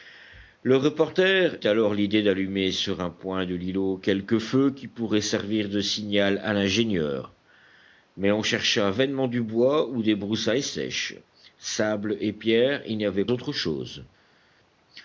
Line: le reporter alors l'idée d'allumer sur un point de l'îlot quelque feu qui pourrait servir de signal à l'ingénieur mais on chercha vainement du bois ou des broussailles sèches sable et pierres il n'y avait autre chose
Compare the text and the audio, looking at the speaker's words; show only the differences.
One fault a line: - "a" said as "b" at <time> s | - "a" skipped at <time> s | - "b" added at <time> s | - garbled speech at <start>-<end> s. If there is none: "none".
none